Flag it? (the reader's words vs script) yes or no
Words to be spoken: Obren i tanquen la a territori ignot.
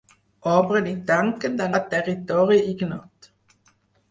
no